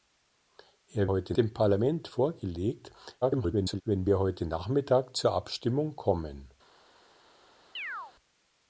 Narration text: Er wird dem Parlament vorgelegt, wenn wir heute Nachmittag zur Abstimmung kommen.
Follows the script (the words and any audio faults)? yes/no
no